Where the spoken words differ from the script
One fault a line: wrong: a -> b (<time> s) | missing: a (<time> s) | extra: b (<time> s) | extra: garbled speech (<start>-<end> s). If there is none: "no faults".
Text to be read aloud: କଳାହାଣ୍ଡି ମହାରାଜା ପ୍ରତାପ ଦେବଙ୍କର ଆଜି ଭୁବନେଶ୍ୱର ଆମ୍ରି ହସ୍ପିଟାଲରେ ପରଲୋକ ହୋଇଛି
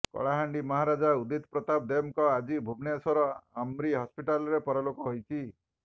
extra: ଉଦିତ (1.2 s)